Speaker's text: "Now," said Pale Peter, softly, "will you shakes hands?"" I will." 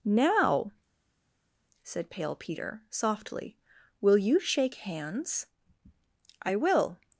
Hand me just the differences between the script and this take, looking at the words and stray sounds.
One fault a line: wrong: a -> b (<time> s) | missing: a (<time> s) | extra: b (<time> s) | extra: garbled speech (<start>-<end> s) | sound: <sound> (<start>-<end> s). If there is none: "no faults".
wrong: shakes -> shake (4.4 s)